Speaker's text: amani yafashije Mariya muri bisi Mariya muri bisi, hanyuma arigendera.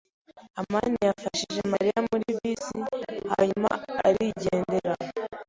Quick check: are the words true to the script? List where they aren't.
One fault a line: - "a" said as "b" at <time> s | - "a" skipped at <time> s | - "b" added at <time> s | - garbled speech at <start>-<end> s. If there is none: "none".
- "Mariya muri bisi" skipped at 2.8 s